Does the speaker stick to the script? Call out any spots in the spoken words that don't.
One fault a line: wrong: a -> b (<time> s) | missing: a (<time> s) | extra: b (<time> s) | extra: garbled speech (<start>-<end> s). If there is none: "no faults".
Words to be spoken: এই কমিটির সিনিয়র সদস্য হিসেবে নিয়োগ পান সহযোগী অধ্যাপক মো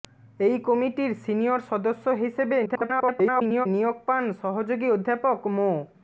extra: garbled speech (2.7-3.7 s)